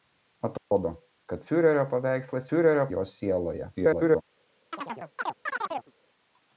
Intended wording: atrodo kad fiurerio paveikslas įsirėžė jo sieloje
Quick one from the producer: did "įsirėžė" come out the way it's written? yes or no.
no